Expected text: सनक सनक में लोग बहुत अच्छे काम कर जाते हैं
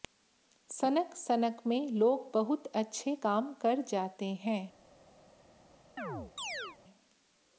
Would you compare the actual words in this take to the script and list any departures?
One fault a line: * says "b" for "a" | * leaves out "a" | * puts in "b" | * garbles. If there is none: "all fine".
all fine